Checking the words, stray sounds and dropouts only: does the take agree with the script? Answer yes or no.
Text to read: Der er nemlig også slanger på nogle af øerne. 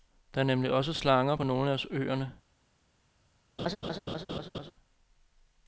no